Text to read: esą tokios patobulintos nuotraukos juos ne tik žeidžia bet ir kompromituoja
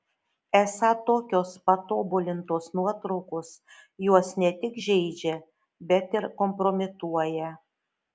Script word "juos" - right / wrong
right